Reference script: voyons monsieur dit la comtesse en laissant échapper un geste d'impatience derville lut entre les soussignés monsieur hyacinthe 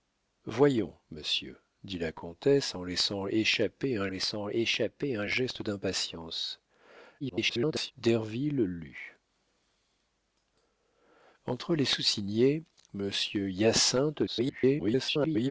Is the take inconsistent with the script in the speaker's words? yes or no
yes